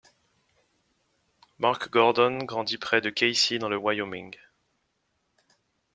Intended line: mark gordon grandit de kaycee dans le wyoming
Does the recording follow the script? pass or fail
fail